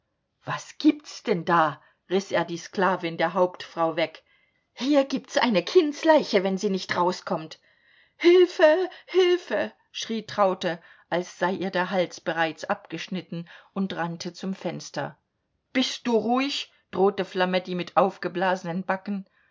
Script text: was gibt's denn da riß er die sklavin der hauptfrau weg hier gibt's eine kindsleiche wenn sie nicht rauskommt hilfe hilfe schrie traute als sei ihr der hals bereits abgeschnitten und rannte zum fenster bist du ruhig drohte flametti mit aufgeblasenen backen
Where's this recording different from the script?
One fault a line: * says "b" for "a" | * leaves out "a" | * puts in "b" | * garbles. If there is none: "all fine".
all fine